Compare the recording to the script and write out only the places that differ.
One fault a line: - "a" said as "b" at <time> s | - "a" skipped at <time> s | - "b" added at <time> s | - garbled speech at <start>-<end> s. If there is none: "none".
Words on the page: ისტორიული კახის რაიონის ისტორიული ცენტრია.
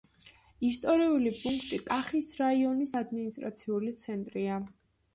- "პუნქტი" added at 1.4 s
- "ისტორიული" said as "ადმინისტრაციული" at 3.0 s